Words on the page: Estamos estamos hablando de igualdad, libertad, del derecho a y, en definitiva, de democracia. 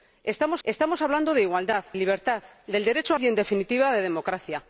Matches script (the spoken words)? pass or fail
pass